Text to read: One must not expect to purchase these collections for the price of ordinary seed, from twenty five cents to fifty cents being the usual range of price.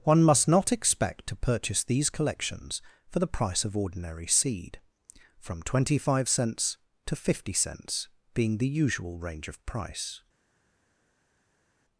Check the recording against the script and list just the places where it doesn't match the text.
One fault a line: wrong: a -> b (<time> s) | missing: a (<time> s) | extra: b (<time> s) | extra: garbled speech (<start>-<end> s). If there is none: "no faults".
no faults